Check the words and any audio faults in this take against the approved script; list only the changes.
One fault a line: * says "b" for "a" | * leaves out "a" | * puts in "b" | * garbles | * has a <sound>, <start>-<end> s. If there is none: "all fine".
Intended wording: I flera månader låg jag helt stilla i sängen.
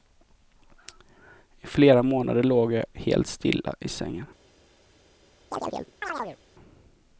* has a chirp, 5.5-6.4 s